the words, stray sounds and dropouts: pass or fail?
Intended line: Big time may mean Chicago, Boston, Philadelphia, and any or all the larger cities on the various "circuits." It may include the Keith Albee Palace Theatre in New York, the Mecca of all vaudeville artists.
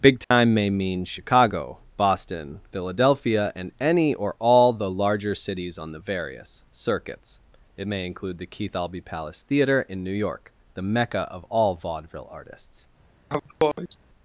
fail